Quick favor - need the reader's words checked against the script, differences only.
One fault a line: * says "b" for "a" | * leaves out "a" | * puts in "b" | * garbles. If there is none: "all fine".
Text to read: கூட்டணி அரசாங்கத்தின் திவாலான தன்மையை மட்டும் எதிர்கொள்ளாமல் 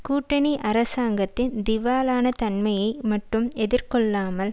all fine